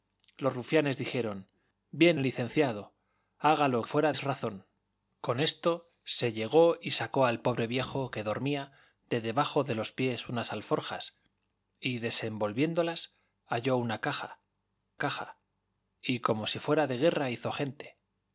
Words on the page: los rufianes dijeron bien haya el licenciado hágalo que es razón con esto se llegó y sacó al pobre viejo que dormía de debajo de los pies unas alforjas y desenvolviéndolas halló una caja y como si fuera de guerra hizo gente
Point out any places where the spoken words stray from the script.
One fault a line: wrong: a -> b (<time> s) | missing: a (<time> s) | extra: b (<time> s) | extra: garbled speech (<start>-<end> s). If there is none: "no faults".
missing: haya (2.2 s)
wrong: que -> fuera (3.8 s)
extra: caja (15.0 s)